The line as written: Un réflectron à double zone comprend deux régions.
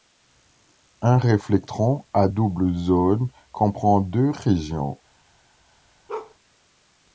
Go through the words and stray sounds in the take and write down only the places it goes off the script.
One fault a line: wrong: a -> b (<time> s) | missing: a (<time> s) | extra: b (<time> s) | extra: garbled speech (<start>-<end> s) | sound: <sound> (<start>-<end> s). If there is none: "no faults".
sound: bark (6.1-6.4 s)